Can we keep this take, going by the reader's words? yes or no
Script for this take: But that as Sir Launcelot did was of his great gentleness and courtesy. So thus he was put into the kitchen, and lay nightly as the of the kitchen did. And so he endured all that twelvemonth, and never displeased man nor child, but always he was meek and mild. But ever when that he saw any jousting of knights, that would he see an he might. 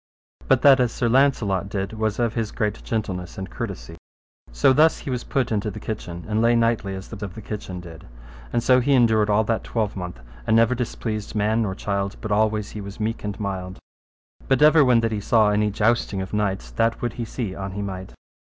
yes